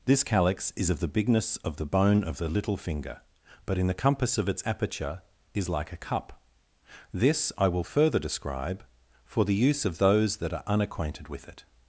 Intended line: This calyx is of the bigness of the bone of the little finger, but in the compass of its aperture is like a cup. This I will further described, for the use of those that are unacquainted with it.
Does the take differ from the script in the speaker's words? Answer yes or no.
yes